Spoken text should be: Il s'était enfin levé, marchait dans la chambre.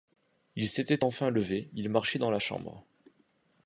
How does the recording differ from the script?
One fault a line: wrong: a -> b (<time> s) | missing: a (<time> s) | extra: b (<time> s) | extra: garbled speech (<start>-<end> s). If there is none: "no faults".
extra: il (1.7 s)